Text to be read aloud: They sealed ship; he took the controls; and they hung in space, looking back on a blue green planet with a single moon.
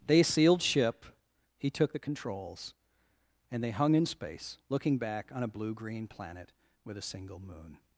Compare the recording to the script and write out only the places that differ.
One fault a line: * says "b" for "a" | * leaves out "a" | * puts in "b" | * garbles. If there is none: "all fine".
all fine